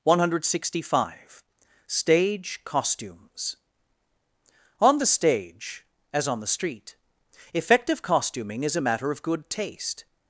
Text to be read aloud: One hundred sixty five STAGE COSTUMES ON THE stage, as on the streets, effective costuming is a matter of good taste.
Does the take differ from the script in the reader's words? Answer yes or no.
yes